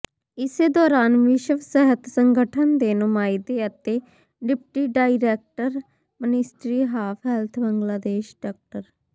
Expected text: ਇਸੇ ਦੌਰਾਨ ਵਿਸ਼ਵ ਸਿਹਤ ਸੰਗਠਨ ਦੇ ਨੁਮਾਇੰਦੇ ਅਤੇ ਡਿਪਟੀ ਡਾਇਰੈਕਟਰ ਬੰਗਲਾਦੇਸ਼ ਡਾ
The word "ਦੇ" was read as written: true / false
true